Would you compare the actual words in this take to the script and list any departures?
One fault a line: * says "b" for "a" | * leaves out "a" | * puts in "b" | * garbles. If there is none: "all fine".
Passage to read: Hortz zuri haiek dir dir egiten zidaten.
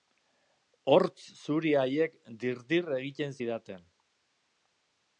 all fine